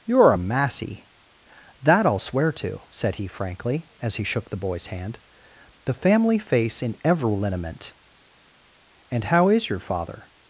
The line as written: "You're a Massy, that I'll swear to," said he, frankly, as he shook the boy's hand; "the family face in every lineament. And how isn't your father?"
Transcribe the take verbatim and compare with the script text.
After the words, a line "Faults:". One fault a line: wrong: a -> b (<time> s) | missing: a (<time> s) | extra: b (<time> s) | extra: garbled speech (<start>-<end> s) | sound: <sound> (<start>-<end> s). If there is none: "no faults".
"You're a Massy, that I'll swear to," said he, frankly, as he shook the boy's hand; "the family face in every lineament. And how is your father?"
Faults:
wrong: isn't -> is (9.5 s)